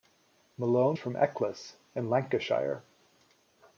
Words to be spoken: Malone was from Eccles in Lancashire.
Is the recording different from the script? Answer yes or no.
yes